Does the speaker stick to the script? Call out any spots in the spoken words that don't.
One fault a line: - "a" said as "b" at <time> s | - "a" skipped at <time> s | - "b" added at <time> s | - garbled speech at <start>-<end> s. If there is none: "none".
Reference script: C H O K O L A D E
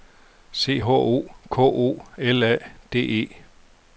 none